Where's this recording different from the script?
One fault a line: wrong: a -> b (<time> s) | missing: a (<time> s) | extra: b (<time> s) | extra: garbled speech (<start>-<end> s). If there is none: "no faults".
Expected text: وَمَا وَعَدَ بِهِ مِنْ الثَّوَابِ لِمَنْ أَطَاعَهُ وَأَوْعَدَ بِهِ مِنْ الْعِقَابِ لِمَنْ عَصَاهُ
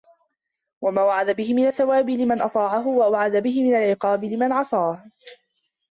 no faults